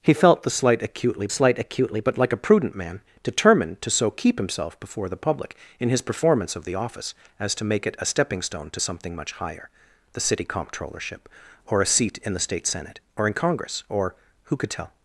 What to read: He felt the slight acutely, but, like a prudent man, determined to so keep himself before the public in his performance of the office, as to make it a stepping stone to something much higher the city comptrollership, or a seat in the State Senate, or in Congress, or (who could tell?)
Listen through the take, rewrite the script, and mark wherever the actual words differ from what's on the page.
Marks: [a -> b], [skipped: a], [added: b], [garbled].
He felt the slight acutely, [added: slight acutely] but, like a prudent man, determined to so keep himself before the public in his performance of the office, as to make it a stepping stone to something much higher the city comptrollership, or a seat in the State Senate, or in Congress, or (who could tell?)